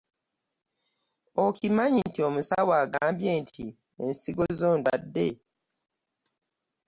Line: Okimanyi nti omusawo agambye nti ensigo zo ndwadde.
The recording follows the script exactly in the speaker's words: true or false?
true